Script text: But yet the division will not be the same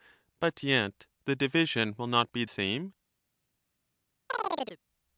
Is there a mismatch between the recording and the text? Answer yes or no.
yes